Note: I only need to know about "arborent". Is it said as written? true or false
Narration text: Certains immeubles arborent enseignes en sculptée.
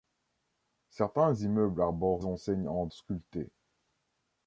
true